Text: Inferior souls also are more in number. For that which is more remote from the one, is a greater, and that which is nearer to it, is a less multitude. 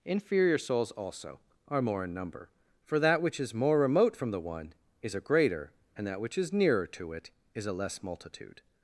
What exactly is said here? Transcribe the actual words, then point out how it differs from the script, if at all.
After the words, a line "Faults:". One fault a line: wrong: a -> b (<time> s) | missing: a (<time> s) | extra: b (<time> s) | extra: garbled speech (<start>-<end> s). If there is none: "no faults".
Inferior souls also are more in number. For that which is more remote from the one, is a greater, and that which is nearer to it, is a less multitude.
Faults:
no faults